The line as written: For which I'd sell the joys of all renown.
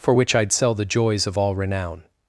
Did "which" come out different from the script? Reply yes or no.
no